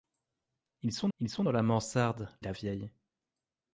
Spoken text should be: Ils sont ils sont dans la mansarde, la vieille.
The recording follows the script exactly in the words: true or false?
true